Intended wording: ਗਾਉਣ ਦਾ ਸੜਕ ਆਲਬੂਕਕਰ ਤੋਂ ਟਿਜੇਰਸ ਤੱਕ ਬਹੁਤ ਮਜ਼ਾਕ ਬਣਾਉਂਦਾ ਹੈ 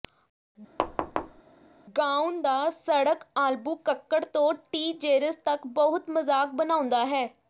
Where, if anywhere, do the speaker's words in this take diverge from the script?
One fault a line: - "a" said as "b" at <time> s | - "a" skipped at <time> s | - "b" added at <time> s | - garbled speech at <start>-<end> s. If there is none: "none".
none